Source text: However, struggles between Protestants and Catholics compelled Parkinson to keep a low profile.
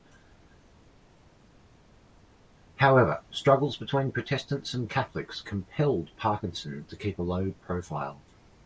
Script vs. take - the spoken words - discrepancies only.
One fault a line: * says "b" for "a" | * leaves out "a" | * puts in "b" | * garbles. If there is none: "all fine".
all fine